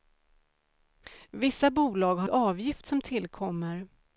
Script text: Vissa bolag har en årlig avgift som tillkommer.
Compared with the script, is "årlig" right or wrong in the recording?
wrong